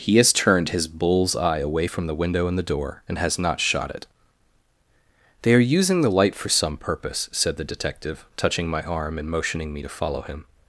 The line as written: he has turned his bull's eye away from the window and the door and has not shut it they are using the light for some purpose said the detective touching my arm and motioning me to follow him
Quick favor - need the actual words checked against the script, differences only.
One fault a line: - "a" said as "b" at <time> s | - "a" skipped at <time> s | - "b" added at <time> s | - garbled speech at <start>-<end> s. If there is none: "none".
- "shut" said as "shot" at 3.6 s